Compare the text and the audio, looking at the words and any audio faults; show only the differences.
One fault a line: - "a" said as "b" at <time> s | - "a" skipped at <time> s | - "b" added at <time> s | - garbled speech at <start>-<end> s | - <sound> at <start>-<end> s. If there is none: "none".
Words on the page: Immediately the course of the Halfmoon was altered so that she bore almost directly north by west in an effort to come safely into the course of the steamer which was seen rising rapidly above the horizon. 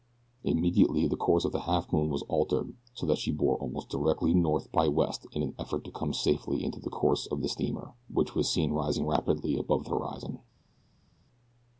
none